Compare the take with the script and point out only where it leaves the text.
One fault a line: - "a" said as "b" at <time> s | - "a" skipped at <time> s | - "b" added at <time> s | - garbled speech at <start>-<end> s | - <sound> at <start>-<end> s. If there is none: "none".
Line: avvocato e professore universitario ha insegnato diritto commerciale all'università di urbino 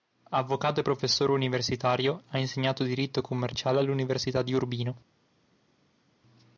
none